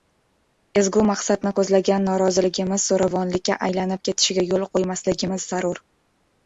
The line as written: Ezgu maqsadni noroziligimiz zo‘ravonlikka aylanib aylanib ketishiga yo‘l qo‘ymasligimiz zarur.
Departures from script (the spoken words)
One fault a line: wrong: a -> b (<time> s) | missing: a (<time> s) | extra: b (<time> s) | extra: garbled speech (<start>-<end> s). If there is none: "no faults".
extra: ko‘zlagan (1.6 s)
missing: aylanib (4.0 s)